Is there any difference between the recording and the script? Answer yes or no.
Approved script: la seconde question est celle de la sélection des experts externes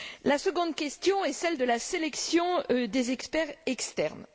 no